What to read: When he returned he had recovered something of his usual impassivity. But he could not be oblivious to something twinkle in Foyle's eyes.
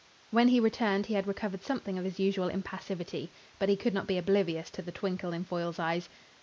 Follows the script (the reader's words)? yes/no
no